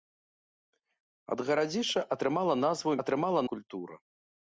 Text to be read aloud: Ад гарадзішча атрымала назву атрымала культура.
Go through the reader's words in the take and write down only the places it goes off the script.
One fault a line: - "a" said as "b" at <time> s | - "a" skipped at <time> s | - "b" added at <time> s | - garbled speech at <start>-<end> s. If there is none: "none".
none